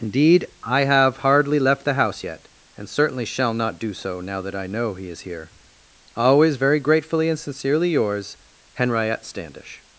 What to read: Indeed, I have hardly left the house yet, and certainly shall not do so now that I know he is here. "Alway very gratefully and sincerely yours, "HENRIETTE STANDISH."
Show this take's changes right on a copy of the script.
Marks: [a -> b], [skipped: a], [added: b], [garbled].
Indeed, I have hardly left the house yet, and certainly shall not do so now that I know he is here. ["Alway -> Always] very gratefully and sincerely yours, "HENRIETTE STANDISH."